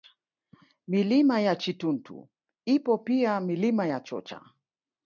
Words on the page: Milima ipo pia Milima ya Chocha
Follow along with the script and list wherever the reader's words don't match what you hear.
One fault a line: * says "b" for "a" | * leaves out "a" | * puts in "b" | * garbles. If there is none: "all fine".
* puts in "ya Chituntu"